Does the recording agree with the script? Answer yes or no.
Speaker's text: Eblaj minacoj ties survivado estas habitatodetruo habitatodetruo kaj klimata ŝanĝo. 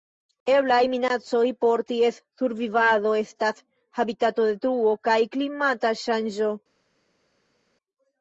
no